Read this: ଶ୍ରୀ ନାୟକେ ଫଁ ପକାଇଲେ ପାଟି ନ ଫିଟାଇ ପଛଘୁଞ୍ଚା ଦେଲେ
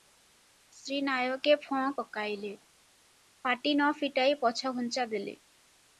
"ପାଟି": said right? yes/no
yes